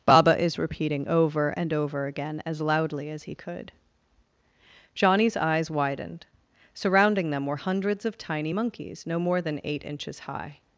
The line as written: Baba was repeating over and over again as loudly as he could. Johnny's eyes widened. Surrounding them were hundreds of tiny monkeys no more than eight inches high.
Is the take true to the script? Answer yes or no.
no